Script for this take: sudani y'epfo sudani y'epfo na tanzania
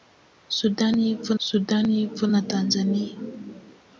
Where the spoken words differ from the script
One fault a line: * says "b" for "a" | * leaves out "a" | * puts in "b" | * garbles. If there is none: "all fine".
all fine